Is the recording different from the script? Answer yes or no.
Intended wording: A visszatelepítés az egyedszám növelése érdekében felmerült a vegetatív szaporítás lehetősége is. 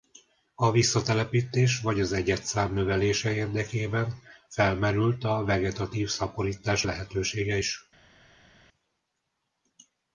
yes